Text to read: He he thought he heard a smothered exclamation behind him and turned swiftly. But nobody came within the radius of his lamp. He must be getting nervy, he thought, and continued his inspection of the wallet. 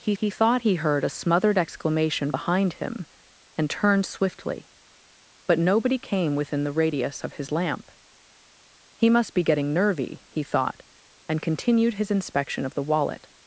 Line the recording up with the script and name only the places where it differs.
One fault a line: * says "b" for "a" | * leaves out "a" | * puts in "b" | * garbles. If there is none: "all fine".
all fine